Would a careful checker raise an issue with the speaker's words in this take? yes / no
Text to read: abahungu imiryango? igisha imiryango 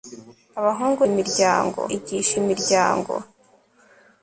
no